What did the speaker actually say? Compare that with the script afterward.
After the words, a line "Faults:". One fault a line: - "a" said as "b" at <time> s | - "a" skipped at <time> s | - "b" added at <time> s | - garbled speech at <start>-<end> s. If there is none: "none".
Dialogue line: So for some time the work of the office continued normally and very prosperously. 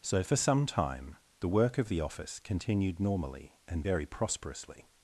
So for some time the work of the office continued normally and very prosperously.
Faults:
none